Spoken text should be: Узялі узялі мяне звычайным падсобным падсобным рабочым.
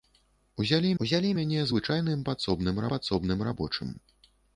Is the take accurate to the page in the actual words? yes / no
yes